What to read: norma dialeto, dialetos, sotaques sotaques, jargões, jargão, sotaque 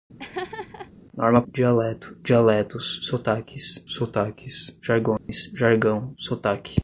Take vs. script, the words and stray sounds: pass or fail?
fail